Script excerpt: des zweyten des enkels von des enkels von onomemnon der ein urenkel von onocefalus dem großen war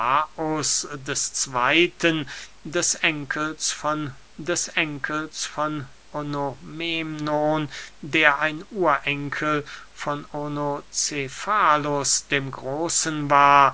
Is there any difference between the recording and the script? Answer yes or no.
no